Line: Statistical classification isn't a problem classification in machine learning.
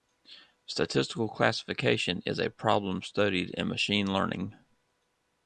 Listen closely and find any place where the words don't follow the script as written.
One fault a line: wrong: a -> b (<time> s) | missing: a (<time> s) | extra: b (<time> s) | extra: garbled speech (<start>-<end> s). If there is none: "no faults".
wrong: isn't -> is (2.2 s)
wrong: classification -> studied (3.0 s)